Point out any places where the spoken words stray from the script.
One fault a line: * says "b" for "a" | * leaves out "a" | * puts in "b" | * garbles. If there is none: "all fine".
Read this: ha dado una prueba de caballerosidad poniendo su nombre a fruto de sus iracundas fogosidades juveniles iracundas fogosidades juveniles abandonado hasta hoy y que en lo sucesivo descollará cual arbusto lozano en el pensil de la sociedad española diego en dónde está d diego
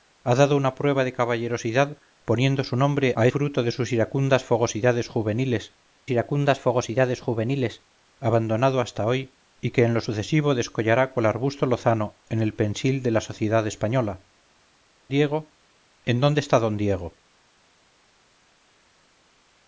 all fine